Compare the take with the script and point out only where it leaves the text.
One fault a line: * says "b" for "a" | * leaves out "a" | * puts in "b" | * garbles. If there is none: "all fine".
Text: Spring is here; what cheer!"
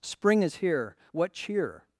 all fine